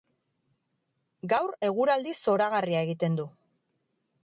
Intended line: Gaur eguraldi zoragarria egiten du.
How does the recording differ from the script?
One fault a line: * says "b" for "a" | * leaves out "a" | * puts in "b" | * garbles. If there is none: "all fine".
all fine